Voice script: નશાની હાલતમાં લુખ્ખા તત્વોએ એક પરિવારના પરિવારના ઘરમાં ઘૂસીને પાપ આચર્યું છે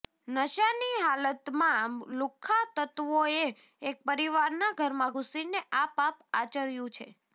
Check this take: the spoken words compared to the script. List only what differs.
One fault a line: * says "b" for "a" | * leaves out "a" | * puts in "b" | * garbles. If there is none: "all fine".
* leaves out "પરિવારના"
* puts in "આ"